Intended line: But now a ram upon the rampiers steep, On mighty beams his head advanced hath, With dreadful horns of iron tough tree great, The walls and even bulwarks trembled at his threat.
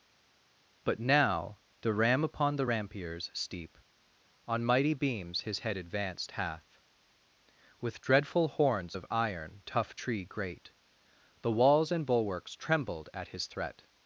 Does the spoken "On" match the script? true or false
true